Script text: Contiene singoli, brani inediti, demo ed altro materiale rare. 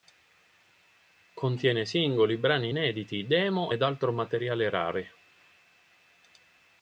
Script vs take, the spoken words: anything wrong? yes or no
no